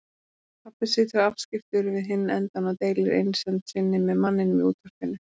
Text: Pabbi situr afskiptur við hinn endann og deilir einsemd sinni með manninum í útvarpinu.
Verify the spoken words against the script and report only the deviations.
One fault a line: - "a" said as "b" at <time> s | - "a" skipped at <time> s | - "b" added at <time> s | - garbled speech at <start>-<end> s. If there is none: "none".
none